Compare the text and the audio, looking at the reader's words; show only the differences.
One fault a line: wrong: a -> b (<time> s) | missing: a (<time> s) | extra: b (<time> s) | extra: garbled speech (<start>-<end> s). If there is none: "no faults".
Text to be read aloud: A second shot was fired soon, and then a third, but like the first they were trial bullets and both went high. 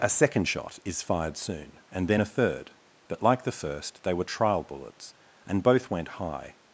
wrong: was -> is (0.8 s)